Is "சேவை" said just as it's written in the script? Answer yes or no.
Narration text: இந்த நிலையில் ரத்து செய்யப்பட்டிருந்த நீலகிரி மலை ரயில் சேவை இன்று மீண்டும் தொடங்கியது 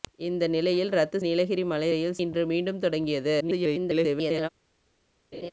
no